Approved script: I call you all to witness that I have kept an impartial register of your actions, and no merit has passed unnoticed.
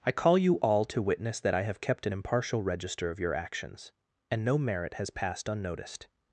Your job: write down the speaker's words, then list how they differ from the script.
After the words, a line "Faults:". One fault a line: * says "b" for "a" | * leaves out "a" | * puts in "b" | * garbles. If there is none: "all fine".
I call you all to witness that I have kept an impartial register of your actions, and no merit has passed unnoticed.
Faults:
all fine